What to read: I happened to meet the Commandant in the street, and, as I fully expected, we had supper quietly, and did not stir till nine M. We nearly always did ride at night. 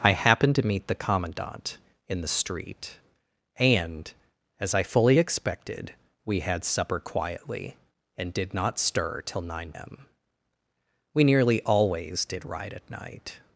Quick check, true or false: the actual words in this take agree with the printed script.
true